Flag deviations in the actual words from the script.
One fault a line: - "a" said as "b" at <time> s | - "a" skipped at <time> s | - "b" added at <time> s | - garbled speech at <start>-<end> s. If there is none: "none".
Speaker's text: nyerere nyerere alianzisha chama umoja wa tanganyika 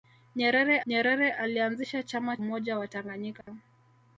none